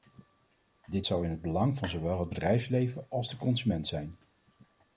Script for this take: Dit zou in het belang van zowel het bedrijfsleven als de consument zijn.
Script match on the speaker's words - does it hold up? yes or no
yes